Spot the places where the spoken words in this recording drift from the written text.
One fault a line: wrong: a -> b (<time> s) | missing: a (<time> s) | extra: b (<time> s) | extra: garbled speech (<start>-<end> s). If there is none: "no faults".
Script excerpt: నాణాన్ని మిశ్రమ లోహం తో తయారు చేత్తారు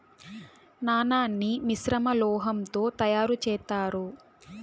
no faults